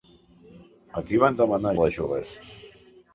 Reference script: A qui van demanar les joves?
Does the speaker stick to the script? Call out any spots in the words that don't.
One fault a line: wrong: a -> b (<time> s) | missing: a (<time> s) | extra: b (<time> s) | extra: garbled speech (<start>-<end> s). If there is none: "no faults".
no faults